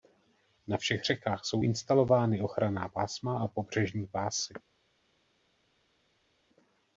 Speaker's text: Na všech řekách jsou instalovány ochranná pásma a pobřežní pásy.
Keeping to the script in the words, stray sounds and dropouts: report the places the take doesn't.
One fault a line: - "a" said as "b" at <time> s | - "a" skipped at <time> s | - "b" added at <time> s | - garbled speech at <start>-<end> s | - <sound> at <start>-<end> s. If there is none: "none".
none